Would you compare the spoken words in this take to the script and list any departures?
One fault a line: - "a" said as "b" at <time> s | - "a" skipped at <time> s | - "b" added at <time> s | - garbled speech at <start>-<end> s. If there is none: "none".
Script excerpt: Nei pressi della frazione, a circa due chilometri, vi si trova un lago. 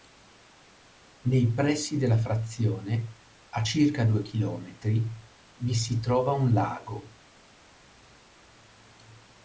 none